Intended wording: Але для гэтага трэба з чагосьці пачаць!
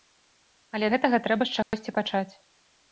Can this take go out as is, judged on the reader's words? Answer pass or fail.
fail